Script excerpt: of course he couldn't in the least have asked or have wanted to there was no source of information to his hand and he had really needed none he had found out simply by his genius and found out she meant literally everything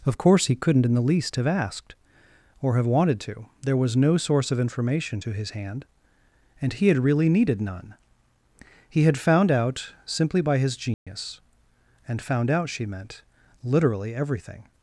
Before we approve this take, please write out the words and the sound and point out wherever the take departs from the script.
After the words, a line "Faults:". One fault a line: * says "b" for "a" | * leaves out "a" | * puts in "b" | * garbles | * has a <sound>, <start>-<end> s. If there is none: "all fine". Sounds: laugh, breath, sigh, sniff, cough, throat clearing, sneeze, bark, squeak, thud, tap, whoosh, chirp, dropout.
of course he couldn't in the least have asked or have wanted to there was no source of information to his hand and he had really needed none he had found out simply by his genius and found out she meant literally everything
Faults:
* has a dropout, 10.9-11.1 s